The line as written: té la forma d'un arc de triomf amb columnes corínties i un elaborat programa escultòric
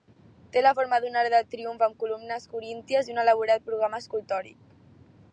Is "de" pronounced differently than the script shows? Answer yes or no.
no